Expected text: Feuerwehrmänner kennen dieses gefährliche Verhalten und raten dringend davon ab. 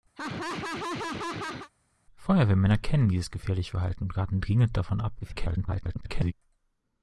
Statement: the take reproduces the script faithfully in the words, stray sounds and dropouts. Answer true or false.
false